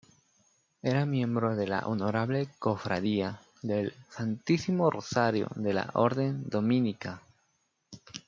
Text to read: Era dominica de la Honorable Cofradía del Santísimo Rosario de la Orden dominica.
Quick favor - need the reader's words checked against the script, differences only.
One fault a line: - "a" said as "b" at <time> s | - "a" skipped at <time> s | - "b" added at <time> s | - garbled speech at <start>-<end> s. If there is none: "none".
- "dominica" said as "miembro" at 1.1 s